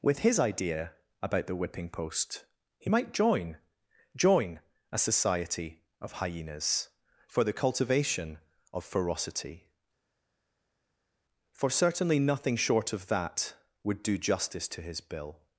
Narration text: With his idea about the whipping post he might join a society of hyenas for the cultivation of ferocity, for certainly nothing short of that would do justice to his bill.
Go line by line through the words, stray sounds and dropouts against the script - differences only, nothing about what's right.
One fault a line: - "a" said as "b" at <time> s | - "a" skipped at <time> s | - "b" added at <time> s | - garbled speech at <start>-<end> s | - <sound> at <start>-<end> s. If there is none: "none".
- "join" added at 4.2 s